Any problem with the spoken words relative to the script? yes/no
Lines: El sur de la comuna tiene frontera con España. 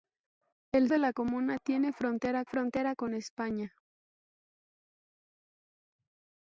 yes